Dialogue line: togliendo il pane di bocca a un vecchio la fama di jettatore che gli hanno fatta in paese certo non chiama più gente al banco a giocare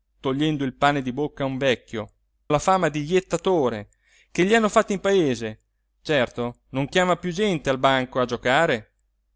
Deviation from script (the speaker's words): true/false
false